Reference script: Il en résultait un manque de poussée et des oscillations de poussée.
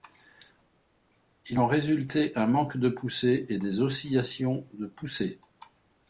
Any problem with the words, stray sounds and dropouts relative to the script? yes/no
no